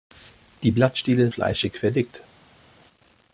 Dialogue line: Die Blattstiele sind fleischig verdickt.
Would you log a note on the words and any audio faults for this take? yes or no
yes